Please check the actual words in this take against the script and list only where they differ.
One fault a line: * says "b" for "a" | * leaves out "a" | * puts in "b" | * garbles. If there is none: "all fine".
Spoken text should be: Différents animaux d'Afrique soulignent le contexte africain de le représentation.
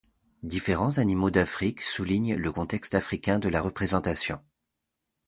* says "la" for "le"